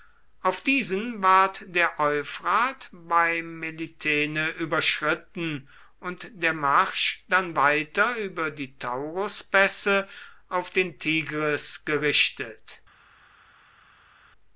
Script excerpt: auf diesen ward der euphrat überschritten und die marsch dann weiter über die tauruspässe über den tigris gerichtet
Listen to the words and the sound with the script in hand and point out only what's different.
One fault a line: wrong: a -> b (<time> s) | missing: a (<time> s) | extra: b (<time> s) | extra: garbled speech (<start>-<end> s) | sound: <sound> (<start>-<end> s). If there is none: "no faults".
extra: bei melitene (2.9 s)
wrong: die -> der (6.3 s)
wrong: über -> auf (10.5 s)